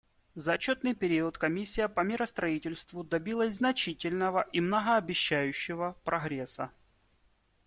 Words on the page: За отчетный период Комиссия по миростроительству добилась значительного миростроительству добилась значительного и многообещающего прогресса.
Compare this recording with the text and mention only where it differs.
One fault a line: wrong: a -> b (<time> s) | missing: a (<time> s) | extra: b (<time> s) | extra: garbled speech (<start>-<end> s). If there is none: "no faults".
missing: миростроительству добилась значительного (4.4 s)